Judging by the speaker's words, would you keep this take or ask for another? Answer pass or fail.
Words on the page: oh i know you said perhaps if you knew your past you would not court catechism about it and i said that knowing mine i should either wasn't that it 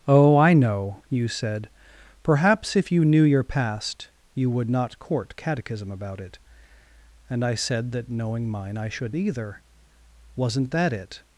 pass